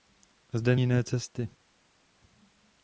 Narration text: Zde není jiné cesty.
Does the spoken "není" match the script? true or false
false